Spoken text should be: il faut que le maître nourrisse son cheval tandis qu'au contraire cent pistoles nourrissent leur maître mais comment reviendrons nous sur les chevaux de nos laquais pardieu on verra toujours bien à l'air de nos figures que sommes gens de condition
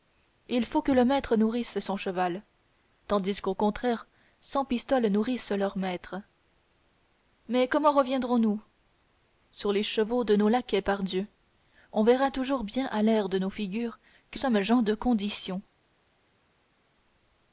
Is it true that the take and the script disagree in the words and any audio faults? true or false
false